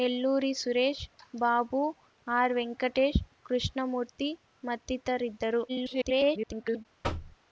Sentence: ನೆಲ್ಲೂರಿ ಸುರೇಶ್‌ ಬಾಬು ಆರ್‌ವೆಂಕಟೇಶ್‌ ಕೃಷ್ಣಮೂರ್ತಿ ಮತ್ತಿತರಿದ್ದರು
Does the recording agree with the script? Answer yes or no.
no